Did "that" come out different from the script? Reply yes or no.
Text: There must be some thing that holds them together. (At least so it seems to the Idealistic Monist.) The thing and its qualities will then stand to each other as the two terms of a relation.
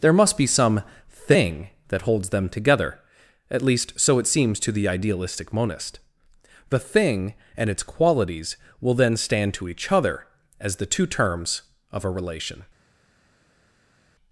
no